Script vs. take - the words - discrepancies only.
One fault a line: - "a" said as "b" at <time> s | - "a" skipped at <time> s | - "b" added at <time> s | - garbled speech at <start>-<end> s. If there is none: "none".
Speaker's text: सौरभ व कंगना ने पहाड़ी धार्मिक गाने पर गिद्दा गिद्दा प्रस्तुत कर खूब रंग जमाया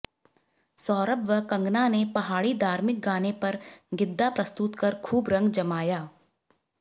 - "गिद्दा" skipped at 4.3 s